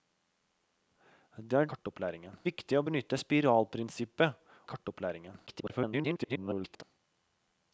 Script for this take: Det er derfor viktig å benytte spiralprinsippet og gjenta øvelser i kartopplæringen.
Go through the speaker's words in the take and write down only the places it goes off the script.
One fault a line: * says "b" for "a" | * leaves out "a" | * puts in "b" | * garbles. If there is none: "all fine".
* says "kartopplæringen" for "derfor"
* leaves out "og gjenta øvelser"
* garbles